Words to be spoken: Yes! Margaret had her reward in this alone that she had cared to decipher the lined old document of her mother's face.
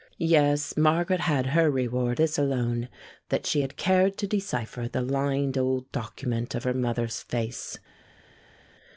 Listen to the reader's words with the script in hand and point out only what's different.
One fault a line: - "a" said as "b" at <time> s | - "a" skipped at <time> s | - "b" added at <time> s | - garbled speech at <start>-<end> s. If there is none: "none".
- "in" skipped at 2.2 s